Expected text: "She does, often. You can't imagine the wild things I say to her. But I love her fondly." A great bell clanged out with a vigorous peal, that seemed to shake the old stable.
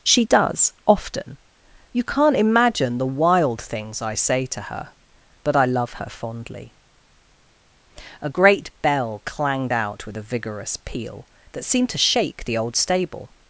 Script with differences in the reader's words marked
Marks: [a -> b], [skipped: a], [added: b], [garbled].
"She does, often. You can't imagine the wild things I say to her. But I love her fondly." A great bell clanged out with a vigorous peal, that seemed to shake the old stable.